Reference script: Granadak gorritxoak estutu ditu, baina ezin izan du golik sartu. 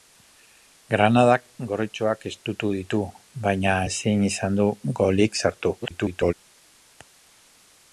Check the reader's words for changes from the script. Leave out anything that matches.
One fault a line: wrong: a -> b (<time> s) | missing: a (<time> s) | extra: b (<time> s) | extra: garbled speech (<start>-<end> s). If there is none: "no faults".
extra: garbled speech (5.8-6.3 s)